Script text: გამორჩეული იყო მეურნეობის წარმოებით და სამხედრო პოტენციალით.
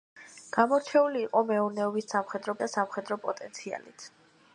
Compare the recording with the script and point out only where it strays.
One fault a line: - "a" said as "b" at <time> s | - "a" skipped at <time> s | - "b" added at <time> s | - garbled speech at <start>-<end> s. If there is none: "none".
- "წარმოებით" said as "სამხედრო" at 2.1 s